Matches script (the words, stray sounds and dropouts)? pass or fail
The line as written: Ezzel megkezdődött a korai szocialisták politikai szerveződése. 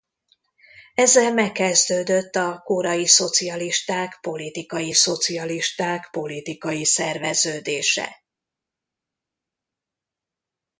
fail